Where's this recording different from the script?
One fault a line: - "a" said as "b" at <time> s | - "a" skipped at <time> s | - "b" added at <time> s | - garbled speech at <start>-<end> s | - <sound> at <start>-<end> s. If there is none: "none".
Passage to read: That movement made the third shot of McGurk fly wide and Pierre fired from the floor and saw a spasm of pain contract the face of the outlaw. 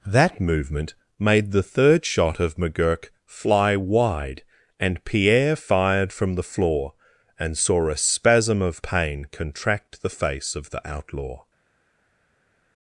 none